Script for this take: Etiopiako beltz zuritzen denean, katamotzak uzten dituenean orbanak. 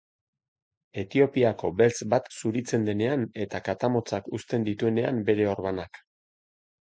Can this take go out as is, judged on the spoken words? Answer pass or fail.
fail